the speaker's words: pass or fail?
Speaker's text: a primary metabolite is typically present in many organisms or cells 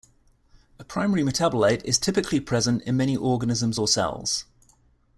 pass